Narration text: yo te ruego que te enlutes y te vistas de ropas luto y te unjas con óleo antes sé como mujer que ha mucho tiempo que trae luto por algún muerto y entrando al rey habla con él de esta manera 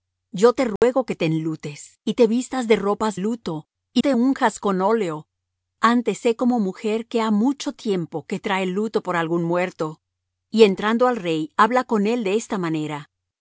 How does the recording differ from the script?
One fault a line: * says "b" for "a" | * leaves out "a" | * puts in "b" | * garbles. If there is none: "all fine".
all fine